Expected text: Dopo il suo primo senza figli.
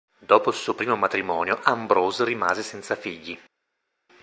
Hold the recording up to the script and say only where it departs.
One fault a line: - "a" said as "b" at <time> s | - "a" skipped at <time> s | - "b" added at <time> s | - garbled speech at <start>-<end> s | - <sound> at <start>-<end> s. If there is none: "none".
- "matrimonio Ambrose rimase" added at 0.9 s